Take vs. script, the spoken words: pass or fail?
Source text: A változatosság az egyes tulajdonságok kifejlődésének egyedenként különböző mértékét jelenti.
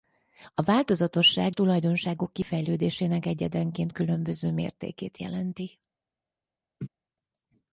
fail